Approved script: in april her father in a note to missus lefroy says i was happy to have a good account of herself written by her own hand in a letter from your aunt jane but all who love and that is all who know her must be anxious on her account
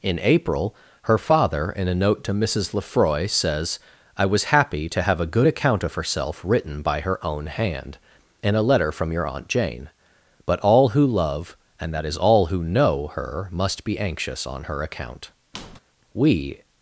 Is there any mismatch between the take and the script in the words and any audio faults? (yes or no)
yes